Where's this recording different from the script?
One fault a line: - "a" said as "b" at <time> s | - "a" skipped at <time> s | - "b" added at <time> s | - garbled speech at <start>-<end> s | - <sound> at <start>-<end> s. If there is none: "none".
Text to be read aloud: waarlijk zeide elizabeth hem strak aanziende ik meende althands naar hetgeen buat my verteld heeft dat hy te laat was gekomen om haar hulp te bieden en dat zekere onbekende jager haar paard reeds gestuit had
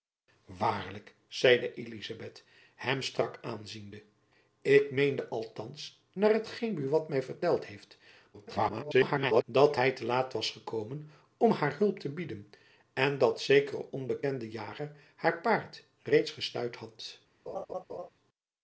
- garbled speech at 8.3-9.4 s
- laugh at 17.5-18.1 s